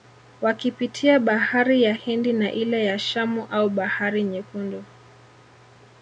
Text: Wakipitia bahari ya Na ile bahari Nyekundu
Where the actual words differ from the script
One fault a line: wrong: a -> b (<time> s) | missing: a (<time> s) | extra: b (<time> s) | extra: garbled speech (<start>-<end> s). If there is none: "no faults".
extra: Hindi (1.9 s)
extra: ya Shamu au (2.8 s)